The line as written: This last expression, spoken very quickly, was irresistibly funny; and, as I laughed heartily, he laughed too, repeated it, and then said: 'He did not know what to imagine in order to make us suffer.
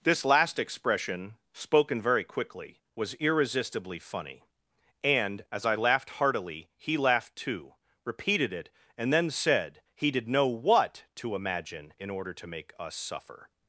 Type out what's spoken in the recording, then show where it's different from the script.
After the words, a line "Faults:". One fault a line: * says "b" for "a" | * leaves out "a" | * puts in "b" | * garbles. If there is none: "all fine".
This last expression, spoken very quickly, was irresistibly funny; and, as I laughed heartily, he laughed too, repeated it, and then said: 'He did know what to imagine in order to make us suffer.
Faults:
* leaves out "not"